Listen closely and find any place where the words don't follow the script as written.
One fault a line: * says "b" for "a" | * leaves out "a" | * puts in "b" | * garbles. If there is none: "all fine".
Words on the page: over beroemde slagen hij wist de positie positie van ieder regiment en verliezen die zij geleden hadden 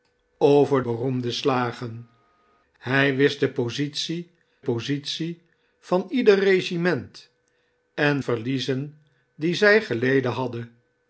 all fine